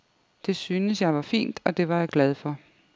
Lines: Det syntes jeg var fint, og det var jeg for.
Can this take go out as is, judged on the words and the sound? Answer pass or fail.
fail